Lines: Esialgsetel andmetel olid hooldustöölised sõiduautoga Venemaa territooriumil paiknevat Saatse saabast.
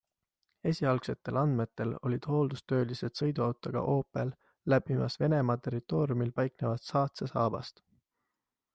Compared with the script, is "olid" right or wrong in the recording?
right